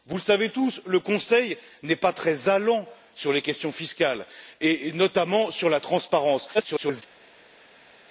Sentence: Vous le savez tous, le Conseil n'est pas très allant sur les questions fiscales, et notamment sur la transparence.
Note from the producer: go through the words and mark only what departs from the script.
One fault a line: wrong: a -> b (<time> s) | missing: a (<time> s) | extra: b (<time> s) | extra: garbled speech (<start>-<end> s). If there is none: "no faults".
extra: garbled speech (6.5-7.0 s)